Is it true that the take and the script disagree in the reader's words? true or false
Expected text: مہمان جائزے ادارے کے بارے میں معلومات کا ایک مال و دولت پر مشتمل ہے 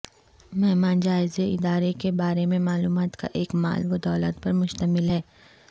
false